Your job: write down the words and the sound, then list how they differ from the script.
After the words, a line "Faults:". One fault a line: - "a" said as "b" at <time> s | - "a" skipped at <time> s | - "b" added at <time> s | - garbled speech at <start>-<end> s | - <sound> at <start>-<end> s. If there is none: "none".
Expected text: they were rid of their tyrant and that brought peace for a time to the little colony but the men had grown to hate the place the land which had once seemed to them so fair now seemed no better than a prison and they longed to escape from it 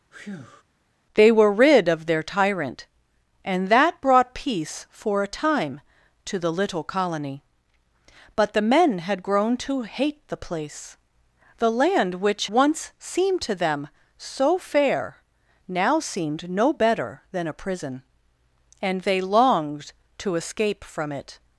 they were rid of their tyrant and that brought peace for a time to the little colony but the men had grown to hate the place the land which once seemed to them so fair now seemed no better than a prison and they longed to escape from it
Faults:
- breath at 0.1-0.6 s
- "had" skipped at 12.5 s